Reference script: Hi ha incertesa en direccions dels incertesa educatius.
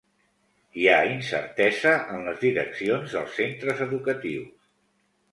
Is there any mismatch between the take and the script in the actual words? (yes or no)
yes